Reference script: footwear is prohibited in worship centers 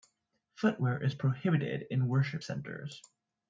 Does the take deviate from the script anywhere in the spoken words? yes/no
no